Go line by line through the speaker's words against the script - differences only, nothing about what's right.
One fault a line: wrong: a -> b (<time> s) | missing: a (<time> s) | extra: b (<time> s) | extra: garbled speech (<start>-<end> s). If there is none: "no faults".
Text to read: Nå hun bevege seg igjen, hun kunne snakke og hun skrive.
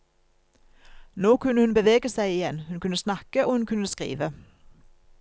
extra: kunne (1.4 s)
extra: kunne (3.7 s)